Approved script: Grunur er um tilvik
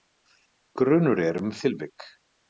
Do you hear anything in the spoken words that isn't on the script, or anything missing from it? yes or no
no